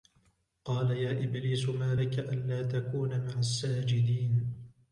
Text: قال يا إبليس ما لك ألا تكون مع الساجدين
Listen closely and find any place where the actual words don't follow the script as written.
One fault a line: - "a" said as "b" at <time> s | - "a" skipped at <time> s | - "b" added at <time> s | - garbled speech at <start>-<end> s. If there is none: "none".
none